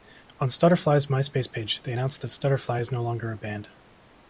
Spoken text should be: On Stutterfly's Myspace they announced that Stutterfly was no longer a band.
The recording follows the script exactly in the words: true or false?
false